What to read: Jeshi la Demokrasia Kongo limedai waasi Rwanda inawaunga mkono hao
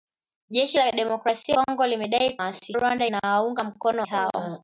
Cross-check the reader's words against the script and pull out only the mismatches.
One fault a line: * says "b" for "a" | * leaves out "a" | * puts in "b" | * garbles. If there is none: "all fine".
all fine